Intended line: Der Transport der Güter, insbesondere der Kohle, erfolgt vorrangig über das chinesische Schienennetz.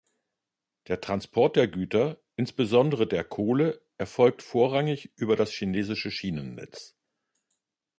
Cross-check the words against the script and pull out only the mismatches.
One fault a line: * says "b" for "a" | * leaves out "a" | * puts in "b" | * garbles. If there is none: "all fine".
all fine